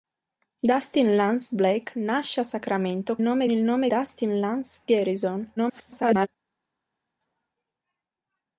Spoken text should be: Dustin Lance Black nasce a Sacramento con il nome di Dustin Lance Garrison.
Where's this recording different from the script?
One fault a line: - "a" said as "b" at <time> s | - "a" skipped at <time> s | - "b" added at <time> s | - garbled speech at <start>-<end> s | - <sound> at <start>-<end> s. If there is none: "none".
- "con" said as "nome" at 3.2 s
- "di" skipped at 3.9 s
- garbled speech at 5.6-6.3 s